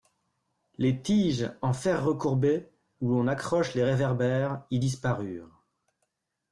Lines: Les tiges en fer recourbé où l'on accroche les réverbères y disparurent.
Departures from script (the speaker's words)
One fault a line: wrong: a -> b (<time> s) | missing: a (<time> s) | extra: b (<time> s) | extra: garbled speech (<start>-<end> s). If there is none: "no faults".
no faults